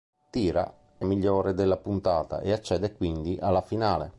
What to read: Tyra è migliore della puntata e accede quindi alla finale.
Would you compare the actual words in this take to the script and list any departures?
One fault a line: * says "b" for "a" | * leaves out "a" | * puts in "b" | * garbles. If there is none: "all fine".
all fine